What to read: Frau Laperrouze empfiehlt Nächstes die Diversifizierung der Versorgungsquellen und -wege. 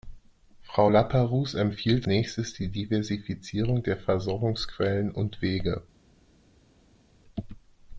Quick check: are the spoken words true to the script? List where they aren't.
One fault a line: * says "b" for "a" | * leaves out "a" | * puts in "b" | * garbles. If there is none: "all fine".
all fine